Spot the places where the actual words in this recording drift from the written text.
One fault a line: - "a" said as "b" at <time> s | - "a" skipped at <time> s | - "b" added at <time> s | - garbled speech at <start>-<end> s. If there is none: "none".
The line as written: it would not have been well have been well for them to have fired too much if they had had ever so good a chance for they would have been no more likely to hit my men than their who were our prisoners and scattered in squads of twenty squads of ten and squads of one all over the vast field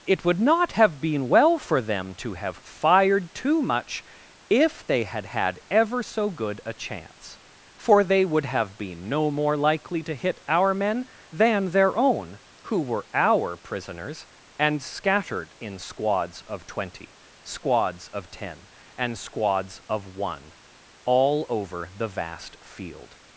- "have been well" skipped at 1.6 s
- "my" said as "our" at 10.5 s
- "own" added at 12.0 s